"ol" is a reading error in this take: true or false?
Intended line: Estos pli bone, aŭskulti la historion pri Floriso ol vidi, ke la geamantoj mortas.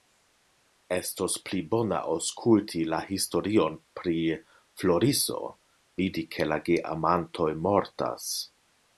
true